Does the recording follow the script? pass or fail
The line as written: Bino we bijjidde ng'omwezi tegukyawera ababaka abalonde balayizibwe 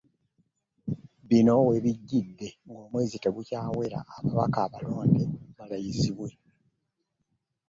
pass